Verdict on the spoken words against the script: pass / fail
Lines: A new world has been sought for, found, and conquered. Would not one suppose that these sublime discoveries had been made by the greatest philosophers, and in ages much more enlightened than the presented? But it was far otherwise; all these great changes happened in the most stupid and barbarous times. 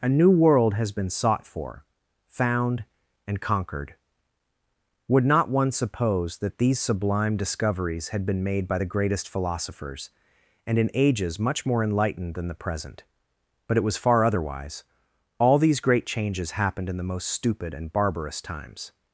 fail